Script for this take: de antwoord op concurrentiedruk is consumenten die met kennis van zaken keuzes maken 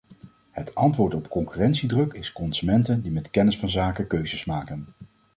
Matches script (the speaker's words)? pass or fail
fail